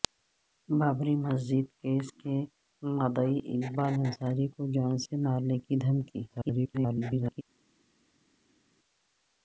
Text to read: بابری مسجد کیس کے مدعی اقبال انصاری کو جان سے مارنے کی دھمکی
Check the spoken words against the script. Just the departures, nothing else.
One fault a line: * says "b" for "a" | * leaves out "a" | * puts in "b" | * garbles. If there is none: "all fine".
* garbles